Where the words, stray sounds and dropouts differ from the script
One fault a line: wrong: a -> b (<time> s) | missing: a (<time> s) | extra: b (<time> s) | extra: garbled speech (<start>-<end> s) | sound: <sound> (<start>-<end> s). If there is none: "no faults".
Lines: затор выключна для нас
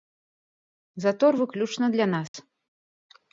sound: dropout (2.3-2.3 s)